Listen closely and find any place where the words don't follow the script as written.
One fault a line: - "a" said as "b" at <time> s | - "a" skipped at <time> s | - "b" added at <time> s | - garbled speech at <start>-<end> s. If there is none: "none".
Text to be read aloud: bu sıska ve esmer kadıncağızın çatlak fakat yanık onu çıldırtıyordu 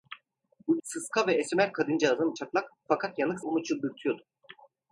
none